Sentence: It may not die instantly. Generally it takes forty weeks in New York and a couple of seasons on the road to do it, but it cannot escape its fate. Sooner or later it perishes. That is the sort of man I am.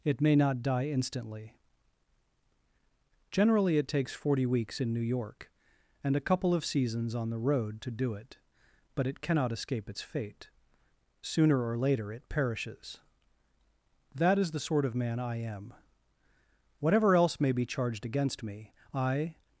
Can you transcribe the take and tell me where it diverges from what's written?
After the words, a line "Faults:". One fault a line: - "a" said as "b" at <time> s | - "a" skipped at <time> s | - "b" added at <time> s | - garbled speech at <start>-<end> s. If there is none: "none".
It may not die instantly. Generally it takes forty weeks in New York and a couple of seasons on the road to do it, but it cannot escape its fate. Sooner or later it perishes. That is the sort of man I am. Whatever else may be charged against me, I
Faults:
- "Whatever else may be charged against me I" added at 16.8 s